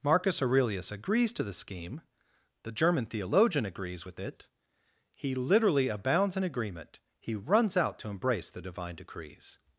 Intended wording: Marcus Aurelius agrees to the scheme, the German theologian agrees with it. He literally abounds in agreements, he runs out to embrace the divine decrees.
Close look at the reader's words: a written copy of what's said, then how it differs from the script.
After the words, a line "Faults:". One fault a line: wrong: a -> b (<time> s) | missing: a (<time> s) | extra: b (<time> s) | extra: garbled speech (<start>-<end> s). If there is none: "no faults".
Marcus Aurelius agrees to the scheme, the German theologian agrees with it. He literally abounds in agreement, he runs out to embrace the divine decrees.
Faults:
wrong: agreements -> agreement (6.4 s)